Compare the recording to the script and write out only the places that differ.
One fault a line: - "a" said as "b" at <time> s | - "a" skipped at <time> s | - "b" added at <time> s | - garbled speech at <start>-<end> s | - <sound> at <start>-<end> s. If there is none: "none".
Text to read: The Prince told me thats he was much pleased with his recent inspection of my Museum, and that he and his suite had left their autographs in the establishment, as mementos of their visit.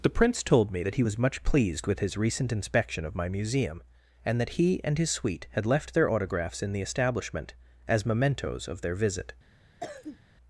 - "thats" said as "that" at 0.8 s
- cough at 9.8-10.2 s